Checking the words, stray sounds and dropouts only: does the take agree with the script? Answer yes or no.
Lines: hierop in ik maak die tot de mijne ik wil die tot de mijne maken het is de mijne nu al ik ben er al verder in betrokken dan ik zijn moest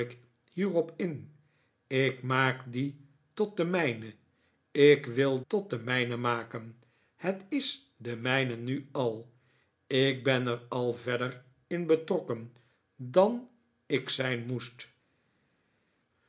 no